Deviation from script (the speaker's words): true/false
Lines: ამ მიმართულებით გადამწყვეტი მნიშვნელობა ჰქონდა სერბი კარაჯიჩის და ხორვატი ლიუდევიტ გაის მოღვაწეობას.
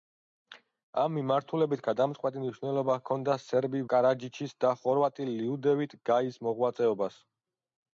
false